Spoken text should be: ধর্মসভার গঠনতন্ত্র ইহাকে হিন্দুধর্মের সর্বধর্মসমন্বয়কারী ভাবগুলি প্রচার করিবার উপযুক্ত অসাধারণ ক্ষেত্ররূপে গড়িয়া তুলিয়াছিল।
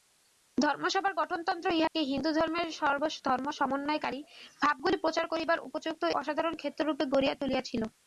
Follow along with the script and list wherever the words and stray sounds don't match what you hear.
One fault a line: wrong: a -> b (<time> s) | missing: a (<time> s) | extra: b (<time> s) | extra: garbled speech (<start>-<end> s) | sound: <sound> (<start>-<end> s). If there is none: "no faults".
sound: dropout (1.9-1.9 s)